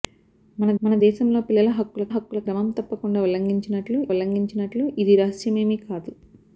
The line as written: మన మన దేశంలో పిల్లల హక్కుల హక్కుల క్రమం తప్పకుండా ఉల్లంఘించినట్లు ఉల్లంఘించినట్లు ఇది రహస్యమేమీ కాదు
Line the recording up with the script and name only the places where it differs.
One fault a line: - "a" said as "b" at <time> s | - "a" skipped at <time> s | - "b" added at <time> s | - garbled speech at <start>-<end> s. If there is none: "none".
none